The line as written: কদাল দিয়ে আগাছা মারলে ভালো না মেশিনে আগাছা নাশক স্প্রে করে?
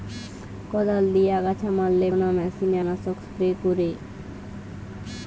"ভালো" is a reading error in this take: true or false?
true